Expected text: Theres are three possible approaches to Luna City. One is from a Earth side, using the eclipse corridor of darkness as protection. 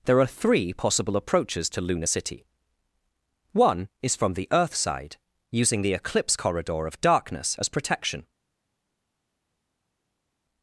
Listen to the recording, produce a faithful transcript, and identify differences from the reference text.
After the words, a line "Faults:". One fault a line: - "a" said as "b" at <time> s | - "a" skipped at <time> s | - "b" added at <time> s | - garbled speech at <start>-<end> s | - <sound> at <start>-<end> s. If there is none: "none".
There are three possible approaches to Luna City. One is from the Earth side, using the eclipse corridor of darkness as protection.
Faults:
- "Theres" said as "There" at 0.1 s
- "a" said as "the" at 4.3 s